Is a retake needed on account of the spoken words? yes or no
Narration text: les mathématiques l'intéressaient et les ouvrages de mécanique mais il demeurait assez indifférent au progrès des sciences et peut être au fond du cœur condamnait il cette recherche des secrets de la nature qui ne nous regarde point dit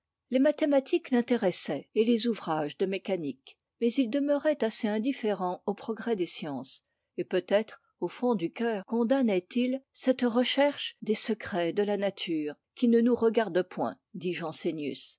no